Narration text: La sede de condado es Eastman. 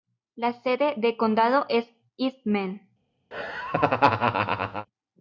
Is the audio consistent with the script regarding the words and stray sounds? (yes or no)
no